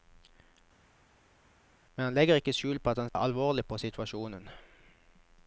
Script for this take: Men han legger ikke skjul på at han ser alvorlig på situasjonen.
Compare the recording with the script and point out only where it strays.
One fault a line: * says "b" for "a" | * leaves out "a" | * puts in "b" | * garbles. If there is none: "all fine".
* leaves out "ser"